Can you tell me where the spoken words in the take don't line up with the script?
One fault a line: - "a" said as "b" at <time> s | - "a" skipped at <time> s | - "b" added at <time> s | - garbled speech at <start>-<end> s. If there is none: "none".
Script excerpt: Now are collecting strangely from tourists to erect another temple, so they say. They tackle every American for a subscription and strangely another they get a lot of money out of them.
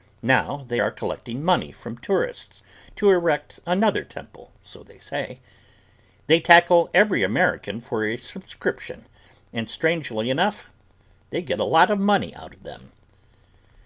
- "they" added at 0.7 s
- "strangely" said as "money" at 1.4 s
- "another" said as "enough" at 10.3 s